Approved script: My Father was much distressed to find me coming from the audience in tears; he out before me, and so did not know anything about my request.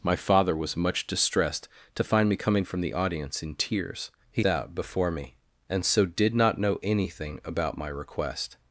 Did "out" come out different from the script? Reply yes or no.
no